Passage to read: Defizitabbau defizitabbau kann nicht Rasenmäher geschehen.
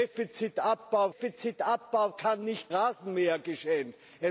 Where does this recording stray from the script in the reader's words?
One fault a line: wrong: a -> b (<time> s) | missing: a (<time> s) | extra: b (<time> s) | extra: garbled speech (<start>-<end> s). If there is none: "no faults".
no faults